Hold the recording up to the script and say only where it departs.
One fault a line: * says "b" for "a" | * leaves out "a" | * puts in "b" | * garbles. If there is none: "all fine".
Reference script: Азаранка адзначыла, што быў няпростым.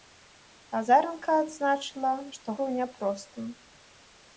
all fine